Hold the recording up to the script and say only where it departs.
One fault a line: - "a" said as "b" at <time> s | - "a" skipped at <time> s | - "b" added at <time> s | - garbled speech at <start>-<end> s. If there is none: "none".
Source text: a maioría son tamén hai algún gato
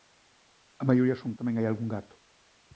none